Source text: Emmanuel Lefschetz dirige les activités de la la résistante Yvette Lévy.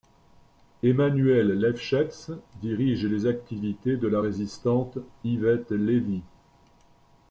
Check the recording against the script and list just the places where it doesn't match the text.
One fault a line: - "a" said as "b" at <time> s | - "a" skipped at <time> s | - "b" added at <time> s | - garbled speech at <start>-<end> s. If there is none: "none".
- "la" skipped at 4.2 s